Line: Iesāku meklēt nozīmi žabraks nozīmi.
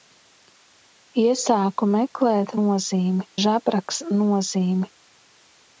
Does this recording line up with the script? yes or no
yes